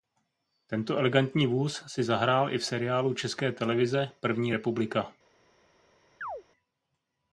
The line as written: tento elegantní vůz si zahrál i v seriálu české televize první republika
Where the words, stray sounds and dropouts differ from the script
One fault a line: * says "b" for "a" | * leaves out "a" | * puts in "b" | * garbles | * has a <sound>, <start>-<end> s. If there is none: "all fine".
* has a chirp, 6.2-6.4 s